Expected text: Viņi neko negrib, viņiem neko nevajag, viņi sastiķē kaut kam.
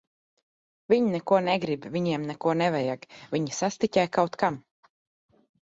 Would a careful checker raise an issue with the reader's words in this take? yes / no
no